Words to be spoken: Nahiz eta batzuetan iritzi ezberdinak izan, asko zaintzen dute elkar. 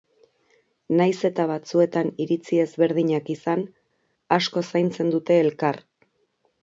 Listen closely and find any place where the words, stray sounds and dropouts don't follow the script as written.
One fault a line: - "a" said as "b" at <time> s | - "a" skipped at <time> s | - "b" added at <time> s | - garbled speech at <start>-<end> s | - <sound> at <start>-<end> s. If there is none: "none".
none